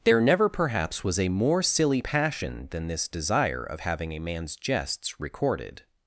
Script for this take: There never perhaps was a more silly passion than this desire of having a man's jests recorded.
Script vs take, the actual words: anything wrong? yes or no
no